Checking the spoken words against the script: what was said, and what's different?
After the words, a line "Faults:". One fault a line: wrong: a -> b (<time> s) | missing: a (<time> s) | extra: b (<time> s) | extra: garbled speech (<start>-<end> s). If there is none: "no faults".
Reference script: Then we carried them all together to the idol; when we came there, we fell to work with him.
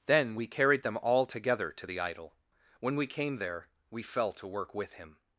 Then we carried them all together to the idol; when we came there, we fell to work with him.
Faults:
no faults